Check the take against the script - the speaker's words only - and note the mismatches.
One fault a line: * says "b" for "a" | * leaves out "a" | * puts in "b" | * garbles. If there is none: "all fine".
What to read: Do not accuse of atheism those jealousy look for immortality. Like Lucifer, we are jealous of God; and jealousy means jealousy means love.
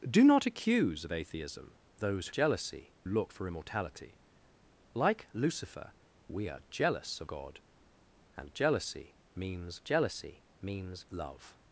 all fine